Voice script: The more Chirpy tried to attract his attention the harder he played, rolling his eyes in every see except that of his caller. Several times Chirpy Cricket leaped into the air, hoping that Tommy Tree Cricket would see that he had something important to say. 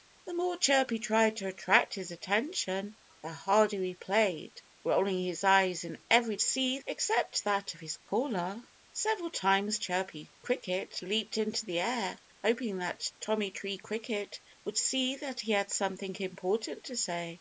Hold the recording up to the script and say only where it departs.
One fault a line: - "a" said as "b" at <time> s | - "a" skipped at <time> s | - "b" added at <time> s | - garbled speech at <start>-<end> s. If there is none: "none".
none